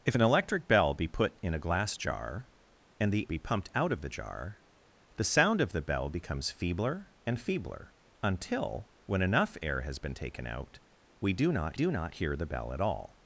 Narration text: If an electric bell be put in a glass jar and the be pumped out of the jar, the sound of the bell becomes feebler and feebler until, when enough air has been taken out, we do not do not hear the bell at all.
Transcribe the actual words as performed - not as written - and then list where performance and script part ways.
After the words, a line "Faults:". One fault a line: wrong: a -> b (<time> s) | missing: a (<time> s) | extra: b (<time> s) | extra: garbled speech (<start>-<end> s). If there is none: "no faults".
If an electric bell be put in a glass jar and the be pumped out of the jar, the sound of the bell becomes feebler and feebler until, when enough air has been taken out, we do not do not hear the bell at all.
Faults:
no faults